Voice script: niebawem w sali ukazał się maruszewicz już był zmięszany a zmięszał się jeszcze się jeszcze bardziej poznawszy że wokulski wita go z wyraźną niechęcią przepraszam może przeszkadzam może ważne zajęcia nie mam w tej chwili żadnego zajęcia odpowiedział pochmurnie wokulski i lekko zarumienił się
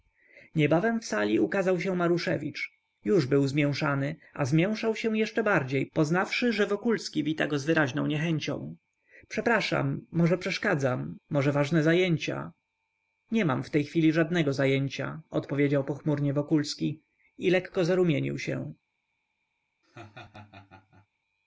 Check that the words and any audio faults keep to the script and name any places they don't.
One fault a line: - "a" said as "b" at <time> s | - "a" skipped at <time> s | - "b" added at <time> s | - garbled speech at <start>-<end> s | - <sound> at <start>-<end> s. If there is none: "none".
- "się jeszcze" skipped at 5.4 s
- laugh at 19.8-21.1 s